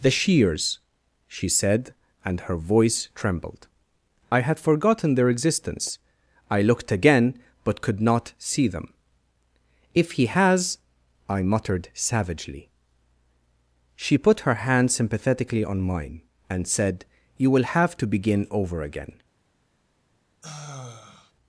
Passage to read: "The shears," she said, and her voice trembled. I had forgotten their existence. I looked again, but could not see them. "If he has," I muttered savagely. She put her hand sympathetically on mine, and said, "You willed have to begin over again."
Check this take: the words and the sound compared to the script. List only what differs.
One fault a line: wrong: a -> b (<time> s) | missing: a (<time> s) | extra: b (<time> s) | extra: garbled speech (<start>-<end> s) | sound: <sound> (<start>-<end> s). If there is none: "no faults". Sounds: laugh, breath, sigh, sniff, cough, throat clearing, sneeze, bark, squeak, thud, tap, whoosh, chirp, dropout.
wrong: willed -> will (17.5 s)
sound: sigh (20.4-21.3 s)